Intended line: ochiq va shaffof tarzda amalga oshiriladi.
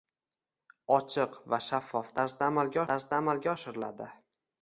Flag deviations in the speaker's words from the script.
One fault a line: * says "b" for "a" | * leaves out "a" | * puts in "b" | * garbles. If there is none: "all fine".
* puts in "tarzda amalga"